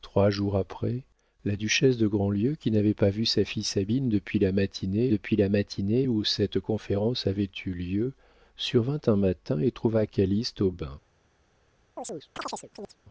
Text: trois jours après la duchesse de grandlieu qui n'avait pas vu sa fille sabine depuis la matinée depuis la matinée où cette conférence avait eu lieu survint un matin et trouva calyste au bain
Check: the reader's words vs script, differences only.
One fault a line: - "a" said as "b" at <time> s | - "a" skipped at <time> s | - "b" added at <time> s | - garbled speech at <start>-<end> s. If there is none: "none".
none